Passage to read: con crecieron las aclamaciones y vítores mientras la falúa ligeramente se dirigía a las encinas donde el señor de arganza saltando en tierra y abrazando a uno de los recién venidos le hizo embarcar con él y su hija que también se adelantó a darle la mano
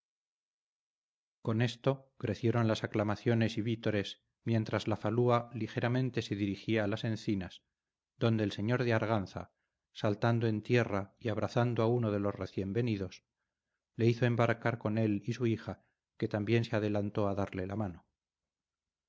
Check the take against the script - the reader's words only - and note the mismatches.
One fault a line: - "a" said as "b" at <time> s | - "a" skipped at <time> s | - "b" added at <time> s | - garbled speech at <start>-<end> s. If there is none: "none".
- "esto" added at 1.6 s